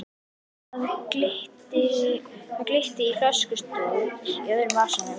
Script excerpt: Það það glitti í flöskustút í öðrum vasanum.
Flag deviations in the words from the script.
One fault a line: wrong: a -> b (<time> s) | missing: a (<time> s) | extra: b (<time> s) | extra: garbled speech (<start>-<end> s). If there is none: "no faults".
missing: það (0.9 s)